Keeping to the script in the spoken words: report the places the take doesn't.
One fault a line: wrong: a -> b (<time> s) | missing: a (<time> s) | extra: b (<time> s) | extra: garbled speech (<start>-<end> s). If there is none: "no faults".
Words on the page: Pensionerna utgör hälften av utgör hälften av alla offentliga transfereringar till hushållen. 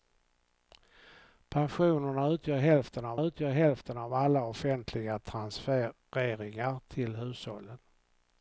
no faults